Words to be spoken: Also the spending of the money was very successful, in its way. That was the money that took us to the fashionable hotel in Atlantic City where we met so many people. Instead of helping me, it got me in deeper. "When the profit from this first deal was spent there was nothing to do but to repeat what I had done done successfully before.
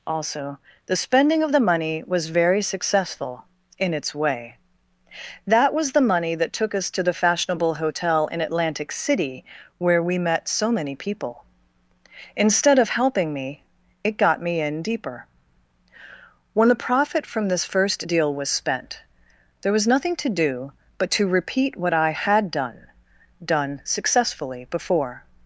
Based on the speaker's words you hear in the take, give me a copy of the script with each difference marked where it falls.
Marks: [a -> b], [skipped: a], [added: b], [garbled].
Also the spending of the money was very successful, in its way. That was the money that took us to the fashionable hotel in Atlantic City where we met so many people. Instead of helping me, it got me in deeper. "When the profit from this first deal was spent there was nothing to do but to repeat what I had done done successfully before.